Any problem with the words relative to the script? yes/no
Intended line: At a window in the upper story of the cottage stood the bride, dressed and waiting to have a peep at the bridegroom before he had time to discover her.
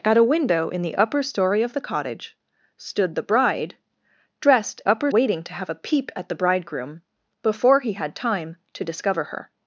yes